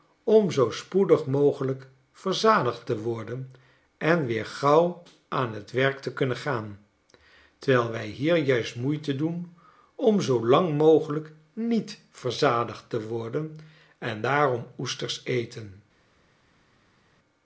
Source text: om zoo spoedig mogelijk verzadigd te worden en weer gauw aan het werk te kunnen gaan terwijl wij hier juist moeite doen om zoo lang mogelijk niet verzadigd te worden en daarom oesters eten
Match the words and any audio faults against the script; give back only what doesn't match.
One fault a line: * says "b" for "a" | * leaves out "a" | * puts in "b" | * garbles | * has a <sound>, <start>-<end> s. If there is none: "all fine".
all fine